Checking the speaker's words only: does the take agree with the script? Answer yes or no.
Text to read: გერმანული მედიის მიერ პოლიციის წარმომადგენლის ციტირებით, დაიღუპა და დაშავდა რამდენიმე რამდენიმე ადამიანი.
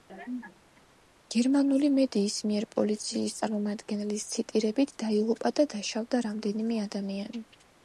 no